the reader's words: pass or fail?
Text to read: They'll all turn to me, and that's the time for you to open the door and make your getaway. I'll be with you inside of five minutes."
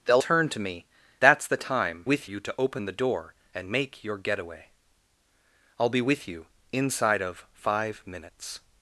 fail